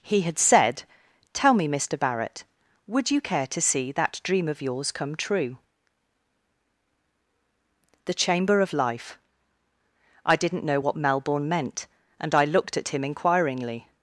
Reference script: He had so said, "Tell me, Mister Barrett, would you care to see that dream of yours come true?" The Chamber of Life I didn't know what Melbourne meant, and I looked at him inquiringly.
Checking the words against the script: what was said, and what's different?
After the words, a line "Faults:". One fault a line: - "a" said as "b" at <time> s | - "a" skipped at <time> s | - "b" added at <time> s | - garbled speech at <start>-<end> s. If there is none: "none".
He had said, "Tell me, Mister Barrett, would you care to see that dream of yours come true?" The Chamber of Life I didn't know what Melbourne meant, and I looked at him inquiringly.
Faults:
- "so" skipped at 0.4 s